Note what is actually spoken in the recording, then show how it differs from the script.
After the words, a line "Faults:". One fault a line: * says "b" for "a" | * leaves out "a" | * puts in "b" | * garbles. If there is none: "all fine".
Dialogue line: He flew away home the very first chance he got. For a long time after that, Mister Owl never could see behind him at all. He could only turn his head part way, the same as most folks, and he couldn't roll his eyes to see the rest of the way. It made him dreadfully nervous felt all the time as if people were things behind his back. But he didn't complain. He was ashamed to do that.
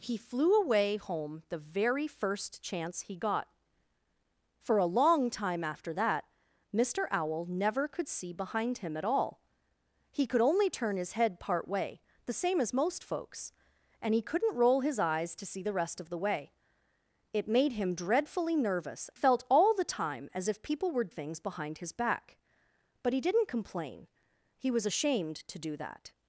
He flew away home the very first chance he got. For a long time after that, Mister Owl never could see behind him at all. He could only turn his head part way, the same as most folks, and he couldn't roll his eyes to see the rest of the way. It made him dreadfully nervous felt all the time as if people were things behind his back. But he didn't complain. He was ashamed to do that.
Faults:
all fine